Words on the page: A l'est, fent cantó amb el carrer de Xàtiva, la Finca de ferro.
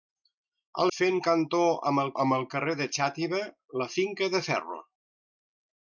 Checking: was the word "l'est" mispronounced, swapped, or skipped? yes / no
yes